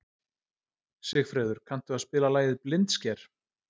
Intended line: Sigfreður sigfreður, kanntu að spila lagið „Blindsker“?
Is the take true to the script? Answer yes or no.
no